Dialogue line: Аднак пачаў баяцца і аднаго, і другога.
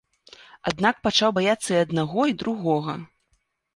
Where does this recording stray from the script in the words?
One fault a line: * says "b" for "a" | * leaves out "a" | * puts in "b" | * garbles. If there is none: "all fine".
all fine